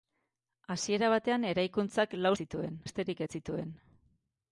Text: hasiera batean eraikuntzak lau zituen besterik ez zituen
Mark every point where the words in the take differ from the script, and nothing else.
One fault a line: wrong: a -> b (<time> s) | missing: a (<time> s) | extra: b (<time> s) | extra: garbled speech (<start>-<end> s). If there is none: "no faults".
no faults